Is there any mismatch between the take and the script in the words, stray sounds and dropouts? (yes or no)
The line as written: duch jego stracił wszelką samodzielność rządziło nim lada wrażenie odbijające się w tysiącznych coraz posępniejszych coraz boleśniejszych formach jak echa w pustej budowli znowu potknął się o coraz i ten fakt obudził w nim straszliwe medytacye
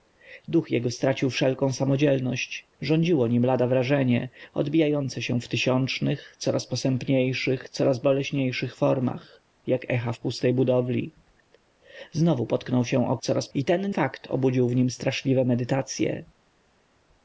no